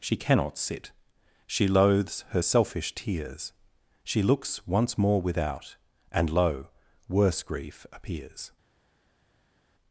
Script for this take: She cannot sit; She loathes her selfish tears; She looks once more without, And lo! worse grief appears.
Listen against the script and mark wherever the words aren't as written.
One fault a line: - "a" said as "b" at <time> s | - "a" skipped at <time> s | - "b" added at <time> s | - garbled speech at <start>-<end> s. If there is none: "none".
none